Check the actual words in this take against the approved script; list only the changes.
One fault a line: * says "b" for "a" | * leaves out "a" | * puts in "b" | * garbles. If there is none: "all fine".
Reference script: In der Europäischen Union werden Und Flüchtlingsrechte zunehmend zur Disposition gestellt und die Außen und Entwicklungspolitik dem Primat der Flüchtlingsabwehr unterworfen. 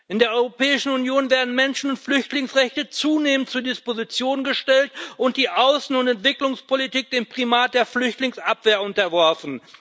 * puts in "Menschen"